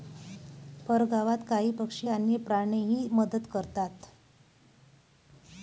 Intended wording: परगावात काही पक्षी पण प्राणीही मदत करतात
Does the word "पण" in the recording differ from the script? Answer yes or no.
yes